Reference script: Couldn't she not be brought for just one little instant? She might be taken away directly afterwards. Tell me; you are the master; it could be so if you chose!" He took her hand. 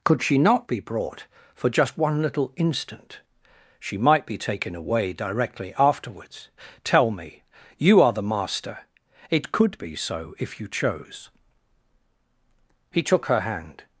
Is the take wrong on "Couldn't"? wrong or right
wrong